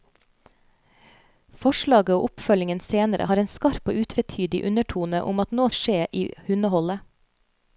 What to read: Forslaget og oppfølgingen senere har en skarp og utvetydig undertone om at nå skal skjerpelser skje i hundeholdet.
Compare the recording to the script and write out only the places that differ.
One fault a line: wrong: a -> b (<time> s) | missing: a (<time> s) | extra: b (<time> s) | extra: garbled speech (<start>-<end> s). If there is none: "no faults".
missing: skal skjerpelser (5.7 s)